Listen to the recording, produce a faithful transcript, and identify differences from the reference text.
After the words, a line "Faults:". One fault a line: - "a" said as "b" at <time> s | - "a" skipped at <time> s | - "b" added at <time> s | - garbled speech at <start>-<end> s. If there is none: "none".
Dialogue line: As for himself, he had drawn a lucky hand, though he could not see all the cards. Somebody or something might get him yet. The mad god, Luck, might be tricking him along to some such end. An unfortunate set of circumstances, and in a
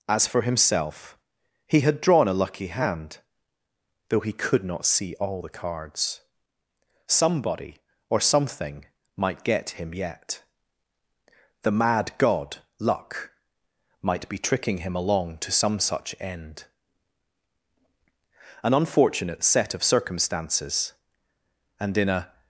As for himself, he had drawn a lucky hand, though he could not see all the cards. Somebody or something might get him yet. The mad god, Luck, might be tricking him along to some such end. An unfortunate set of circumstances, and in a
Faults:
none